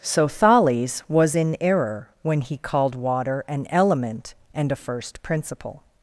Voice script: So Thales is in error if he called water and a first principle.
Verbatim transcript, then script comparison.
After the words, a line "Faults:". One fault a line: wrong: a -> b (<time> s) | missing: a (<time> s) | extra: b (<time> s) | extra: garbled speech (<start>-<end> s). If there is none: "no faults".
So Thales was in error when he called water an element and a first principle.
Faults:
wrong: is -> was (1.1 s)
wrong: if -> when (2.2 s)
extra: an element (3.5 s)